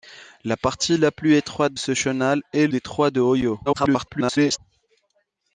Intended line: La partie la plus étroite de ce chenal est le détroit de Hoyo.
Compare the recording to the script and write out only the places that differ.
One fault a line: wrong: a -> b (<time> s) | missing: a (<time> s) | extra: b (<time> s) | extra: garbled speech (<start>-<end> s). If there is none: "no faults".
missing: de (1.8 s)
missing: le (2.7 s)
extra: garbled speech (3.7-4.6 s)